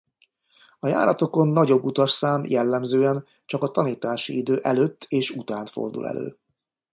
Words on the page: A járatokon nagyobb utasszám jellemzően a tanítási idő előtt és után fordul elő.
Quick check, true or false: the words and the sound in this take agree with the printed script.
false